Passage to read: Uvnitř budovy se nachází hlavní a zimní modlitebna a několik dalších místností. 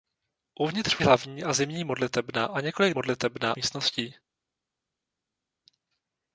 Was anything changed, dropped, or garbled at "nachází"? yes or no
yes